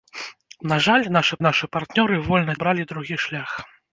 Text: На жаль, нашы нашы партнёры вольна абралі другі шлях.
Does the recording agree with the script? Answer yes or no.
yes